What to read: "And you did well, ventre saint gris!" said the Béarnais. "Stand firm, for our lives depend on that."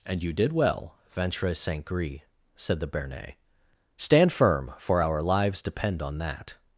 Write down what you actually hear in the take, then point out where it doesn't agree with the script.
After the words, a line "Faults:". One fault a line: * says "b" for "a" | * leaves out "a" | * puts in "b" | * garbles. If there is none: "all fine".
"And you did well, ventre saint gris!" said the Béarnais. "Stand firm, for our lives depend on that."
Faults:
all fine